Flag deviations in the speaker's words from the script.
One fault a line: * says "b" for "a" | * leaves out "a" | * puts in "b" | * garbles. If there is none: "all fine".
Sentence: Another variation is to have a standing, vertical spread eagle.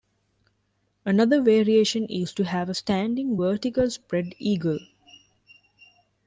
all fine